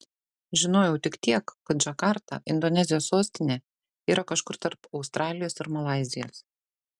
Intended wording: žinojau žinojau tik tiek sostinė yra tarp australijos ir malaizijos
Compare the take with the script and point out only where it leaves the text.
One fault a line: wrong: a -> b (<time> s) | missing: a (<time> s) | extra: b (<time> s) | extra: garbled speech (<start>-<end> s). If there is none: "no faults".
missing: žinojau (0.9 s)
extra: kad džakarta indonezijos (1.7 s)
extra: kažkur (4.3 s)